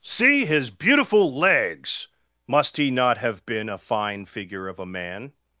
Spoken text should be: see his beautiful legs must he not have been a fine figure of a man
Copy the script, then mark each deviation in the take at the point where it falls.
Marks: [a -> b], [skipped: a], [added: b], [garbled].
see his beautiful legs must he not have been a fine figure of a man